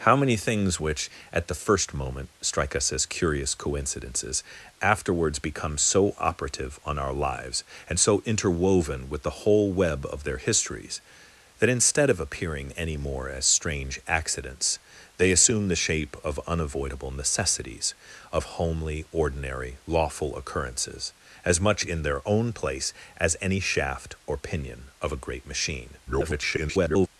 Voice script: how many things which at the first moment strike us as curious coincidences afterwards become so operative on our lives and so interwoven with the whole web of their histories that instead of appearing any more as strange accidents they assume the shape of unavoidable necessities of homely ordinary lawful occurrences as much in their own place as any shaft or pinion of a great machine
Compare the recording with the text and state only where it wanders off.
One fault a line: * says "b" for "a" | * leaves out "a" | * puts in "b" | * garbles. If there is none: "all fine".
* garbles